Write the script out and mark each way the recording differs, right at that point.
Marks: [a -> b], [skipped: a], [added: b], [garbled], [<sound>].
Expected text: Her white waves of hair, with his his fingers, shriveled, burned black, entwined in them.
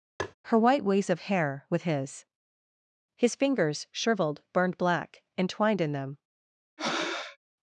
[tap] Her white waves of hair, with his his fingers, shriveled, burned black, entwined in them. [breath]